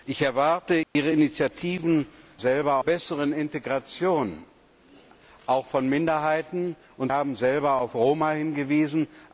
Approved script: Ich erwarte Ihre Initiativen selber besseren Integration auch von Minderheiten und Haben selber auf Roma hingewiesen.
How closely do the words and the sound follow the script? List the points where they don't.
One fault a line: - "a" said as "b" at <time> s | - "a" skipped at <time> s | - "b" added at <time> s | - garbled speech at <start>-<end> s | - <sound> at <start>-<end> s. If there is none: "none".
- dropout at 0.8-1.0 s